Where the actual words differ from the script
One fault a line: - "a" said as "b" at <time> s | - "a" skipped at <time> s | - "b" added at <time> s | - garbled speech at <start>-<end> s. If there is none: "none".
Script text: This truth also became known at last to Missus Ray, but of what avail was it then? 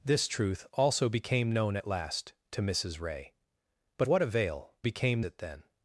- "of" skipped at 4.1 s
- "was" said as "became" at 4.8 s